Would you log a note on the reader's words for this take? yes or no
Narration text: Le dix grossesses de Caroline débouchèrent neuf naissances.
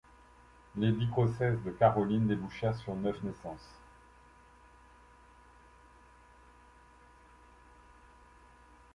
yes